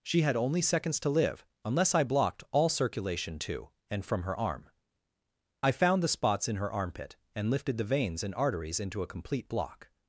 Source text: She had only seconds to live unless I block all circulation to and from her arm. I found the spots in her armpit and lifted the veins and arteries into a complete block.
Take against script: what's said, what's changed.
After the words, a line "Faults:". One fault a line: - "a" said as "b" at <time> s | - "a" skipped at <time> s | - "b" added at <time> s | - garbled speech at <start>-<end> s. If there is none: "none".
She had only seconds to live unless I blocked all circulation to and from her arm. I found the spots in her armpit and lifted the veins and arteries into a complete block.
Faults:
- "block" said as "blocked" at 2.0 s